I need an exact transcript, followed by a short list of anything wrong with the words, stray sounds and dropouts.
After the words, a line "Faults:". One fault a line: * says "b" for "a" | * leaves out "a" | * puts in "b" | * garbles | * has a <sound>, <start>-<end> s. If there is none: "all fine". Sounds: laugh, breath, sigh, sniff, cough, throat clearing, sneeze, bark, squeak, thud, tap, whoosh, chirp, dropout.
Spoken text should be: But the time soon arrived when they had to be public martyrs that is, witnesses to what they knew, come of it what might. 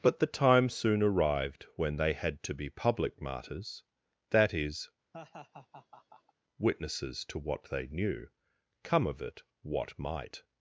But the time soon arrived when they had to be public martyrs that is, witnesses to what they knew, come of it what might.
Faults:
* has a laugh, 5.1-6.3 s